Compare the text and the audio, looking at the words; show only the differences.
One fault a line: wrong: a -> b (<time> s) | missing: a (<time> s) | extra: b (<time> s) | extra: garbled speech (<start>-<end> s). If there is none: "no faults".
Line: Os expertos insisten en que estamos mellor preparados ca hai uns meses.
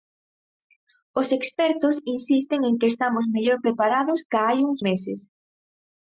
no faults